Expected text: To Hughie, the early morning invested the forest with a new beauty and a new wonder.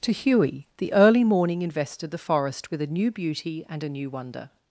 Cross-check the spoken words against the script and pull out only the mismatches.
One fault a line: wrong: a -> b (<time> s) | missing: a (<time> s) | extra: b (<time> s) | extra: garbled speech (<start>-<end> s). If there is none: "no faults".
no faults